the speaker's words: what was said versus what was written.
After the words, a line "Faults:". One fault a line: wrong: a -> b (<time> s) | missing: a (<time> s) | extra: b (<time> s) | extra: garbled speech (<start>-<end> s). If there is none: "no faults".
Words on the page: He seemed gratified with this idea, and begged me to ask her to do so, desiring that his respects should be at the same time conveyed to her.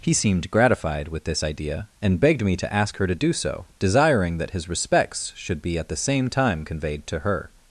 He seemed gratified with this idea, and begged me to ask her to do so, desiring that his respects should be at the same time conveyed to her.
Faults:
no faults